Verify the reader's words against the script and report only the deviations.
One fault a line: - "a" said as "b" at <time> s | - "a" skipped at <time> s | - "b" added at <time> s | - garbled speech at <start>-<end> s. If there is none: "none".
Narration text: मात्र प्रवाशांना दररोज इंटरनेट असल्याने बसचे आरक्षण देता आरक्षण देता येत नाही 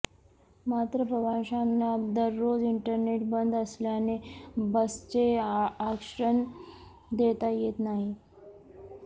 - "बंद" added at 3.3 s
- "आरक्षण देता" skipped at 7.5 s